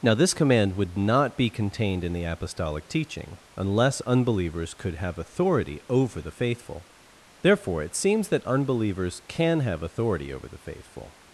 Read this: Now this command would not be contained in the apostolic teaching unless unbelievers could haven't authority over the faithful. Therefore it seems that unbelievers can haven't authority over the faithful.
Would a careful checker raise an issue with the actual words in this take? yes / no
yes